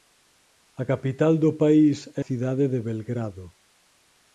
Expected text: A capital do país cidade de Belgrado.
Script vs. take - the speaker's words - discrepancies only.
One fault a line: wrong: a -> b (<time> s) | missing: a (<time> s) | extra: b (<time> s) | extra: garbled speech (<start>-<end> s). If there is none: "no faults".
no faults